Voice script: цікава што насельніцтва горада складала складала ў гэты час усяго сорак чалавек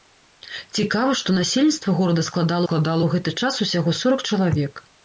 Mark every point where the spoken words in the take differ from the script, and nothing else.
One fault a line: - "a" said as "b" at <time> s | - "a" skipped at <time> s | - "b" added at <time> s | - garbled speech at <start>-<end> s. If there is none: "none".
none